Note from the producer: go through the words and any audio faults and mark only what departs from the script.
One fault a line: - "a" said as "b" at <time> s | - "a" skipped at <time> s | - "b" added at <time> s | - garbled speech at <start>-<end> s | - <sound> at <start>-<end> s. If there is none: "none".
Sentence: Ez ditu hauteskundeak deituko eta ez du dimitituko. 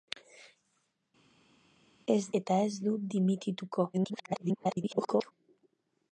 - "ditu hauteskundeak deituko" skipped at 2.2 s
- garbled speech at 3.9-5.3 s